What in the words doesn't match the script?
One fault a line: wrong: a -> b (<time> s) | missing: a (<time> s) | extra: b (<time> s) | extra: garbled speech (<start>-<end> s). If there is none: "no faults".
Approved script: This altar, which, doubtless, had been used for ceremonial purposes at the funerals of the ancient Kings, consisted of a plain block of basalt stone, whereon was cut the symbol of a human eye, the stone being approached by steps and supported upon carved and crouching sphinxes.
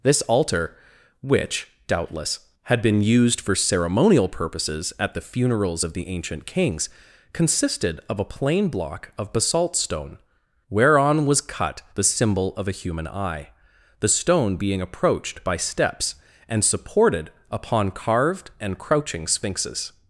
no faults